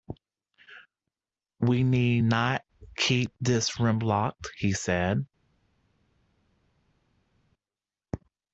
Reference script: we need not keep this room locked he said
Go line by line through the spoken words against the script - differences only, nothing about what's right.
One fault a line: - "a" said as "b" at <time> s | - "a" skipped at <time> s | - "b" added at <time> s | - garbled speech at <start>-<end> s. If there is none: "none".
none